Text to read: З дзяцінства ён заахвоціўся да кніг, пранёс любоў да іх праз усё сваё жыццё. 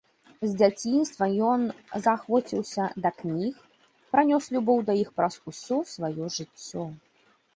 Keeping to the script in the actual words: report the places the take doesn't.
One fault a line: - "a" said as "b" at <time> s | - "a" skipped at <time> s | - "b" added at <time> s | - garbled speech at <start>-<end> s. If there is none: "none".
none